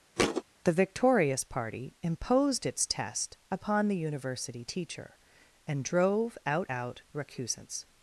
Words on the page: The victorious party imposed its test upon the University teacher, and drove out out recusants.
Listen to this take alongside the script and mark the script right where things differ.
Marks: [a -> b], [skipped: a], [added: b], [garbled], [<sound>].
[thud] The victorious party imposed its test upon the University teacher, and drove out out recusants.